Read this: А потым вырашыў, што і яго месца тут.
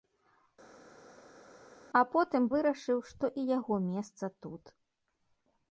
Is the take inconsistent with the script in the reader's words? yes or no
no